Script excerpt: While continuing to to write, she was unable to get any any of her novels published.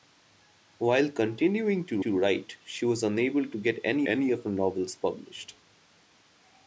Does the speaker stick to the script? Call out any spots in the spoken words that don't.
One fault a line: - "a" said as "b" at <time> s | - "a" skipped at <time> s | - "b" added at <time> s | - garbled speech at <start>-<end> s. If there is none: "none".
none